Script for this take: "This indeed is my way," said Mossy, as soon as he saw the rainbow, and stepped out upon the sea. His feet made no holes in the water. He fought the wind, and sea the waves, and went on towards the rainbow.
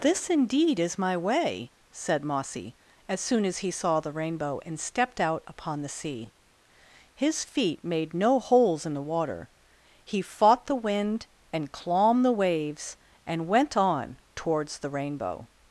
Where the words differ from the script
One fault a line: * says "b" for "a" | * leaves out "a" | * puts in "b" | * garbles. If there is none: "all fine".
* says "clomb" for "sea"